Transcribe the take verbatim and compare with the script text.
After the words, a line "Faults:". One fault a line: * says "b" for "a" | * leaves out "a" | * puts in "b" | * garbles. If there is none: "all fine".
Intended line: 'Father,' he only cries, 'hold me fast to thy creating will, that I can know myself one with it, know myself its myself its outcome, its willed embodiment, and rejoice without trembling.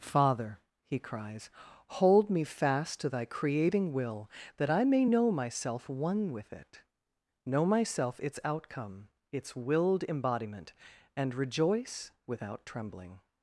'Father,' he cries, 'hold me fast to thy creating will, that I may know myself one with it, know myself its outcome, its willed embodiment, and rejoice without trembling.
Faults:
* leaves out "only"
* says "may" for "can"
* leaves out "myself its"